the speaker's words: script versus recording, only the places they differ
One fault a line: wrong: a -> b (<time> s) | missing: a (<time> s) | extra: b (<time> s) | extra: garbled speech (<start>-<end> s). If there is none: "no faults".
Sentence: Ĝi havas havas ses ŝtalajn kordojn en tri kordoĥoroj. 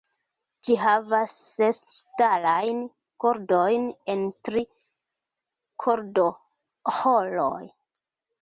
missing: havas (1.3 s)